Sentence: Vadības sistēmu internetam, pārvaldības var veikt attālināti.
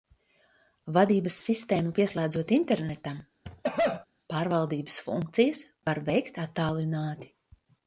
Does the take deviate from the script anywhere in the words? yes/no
yes